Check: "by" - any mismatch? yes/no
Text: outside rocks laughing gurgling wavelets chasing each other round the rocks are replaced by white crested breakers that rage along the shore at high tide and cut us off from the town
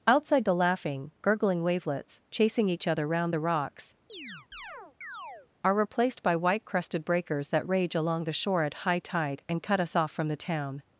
no